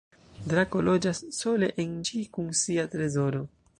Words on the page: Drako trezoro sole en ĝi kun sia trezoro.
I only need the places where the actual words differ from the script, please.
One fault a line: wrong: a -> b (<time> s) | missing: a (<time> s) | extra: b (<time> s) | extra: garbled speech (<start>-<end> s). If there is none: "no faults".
wrong: trezoro -> loĝas (0.9 s)